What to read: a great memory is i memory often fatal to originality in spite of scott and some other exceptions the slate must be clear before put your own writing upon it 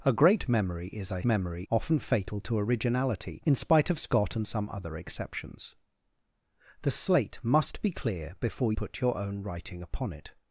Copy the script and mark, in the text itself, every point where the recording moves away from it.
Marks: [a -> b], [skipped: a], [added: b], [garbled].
a great memory is i memory often fatal to originality in spite of scott and some other exceptions the slate must be clear before put your own writing upon it